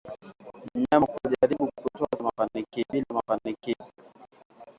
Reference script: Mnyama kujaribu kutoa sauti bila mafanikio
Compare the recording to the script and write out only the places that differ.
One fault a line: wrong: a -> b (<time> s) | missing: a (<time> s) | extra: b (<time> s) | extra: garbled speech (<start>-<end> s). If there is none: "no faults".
wrong: sauti -> mafanikio (2.2 s)